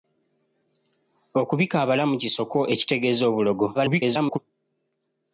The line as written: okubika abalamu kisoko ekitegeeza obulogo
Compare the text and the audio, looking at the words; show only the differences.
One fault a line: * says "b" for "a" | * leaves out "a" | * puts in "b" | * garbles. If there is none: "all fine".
* garbles